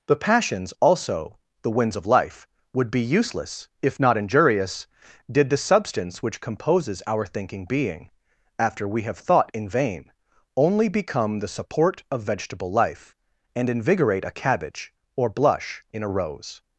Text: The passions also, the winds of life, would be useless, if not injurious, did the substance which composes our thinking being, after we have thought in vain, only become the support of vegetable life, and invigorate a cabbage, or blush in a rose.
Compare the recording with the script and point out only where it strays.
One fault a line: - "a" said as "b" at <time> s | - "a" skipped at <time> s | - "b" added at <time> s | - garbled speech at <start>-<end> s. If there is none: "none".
none